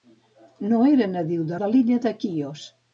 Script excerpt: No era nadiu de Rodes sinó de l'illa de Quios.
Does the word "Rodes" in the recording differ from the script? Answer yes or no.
yes